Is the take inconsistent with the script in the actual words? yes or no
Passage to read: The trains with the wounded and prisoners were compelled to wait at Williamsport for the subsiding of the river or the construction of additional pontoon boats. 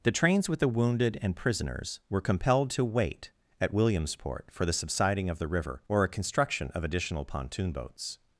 yes